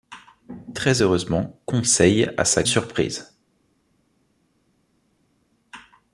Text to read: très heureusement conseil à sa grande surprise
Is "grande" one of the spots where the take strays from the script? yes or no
yes